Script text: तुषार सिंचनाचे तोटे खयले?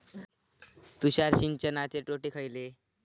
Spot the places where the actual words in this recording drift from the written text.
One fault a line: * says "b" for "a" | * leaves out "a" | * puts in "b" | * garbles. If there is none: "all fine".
all fine